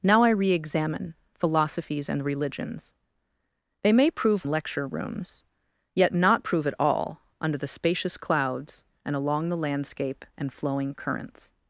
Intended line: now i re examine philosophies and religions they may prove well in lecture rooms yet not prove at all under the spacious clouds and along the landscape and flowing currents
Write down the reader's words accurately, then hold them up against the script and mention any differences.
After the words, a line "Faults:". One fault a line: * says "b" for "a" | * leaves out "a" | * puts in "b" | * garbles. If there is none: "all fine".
now i re examine philosophies and religions they may prove lecture rooms yet not prove at all under the spacious clouds and along the landscape and flowing currents
Faults:
* leaves out "well in"